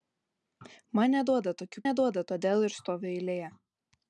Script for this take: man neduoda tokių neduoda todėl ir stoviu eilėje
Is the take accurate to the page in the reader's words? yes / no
yes